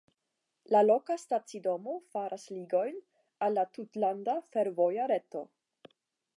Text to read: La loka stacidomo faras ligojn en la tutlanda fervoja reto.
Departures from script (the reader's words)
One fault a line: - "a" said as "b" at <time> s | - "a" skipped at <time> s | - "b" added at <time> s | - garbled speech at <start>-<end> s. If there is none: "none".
- "en" said as "al" at 3.5 s